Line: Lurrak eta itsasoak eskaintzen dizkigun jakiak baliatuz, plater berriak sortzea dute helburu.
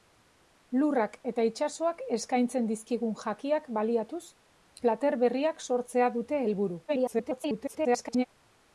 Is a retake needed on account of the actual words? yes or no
yes